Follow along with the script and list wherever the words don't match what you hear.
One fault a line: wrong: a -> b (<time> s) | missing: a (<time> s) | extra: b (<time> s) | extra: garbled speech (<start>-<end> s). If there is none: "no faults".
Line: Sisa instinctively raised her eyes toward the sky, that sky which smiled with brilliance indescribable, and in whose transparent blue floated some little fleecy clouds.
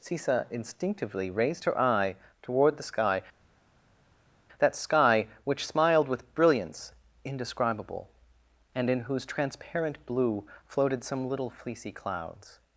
wrong: eyes -> eye (1.8 s)